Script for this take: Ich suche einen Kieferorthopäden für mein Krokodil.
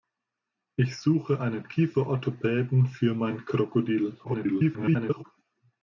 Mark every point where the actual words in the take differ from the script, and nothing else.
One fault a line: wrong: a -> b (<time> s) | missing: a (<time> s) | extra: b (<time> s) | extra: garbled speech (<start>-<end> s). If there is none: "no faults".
extra: garbled speech (4.2-5.2 s)